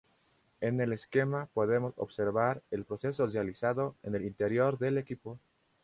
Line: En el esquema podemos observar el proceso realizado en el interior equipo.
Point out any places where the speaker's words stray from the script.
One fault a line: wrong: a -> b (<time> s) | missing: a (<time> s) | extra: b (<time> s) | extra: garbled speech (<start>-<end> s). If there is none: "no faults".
extra: del (4.8 s)